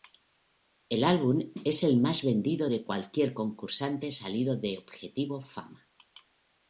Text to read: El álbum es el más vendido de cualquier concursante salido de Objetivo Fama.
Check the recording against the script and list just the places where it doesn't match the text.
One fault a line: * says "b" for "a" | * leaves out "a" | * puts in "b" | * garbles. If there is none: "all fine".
all fine